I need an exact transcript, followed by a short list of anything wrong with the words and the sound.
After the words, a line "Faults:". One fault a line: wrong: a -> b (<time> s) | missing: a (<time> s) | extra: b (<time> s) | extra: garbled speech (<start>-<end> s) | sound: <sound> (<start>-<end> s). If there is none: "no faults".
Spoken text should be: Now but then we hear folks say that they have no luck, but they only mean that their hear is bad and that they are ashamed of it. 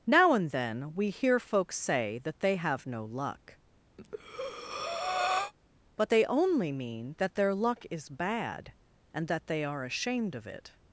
Now and then we hear folks say that they have no luck, but they only mean that their luck is bad and that they are ashamed of it.
Faults:
wrong: but -> and (0.3 s)
sound: breath (4.0-5.5 s)
wrong: hear -> luck (7.5 s)